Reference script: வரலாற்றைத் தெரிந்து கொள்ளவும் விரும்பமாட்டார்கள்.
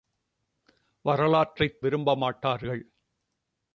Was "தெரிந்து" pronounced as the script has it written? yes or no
no